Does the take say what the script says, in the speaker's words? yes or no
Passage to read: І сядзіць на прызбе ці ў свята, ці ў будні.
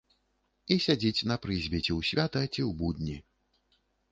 yes